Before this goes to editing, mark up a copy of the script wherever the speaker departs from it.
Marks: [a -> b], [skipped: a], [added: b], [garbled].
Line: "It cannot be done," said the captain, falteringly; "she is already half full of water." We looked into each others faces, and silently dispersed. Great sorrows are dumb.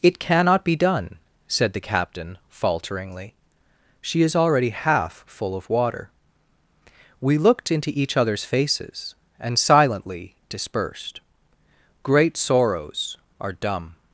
"It cannot be done," said the captain, falteringly; "she is already half full of water." We looked into each others faces, and silently dispersed. Great sorrows are dumb.